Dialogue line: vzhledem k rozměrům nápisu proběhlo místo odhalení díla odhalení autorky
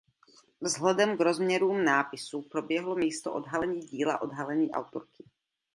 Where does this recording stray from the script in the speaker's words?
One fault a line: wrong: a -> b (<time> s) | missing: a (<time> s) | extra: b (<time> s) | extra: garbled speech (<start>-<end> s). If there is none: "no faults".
no faults